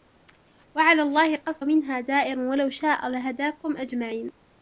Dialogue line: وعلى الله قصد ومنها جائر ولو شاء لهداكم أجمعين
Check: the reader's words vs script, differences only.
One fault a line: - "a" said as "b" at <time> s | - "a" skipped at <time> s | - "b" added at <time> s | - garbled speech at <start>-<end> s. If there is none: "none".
none